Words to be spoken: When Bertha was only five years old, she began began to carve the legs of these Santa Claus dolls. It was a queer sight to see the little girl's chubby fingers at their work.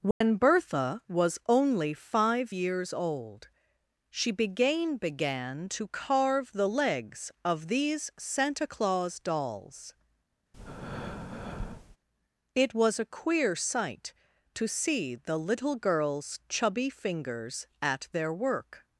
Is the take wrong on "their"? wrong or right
right